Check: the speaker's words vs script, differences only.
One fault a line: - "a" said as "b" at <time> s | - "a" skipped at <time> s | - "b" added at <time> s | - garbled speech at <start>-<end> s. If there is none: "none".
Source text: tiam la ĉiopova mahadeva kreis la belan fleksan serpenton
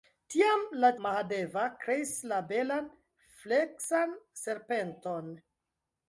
- "ĉiopova" skipped at 0.9 s